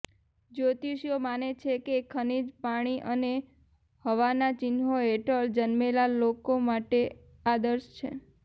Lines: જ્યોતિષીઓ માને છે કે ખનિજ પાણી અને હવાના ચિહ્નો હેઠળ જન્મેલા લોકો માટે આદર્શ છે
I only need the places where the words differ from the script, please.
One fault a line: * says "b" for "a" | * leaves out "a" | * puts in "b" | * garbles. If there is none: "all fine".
all fine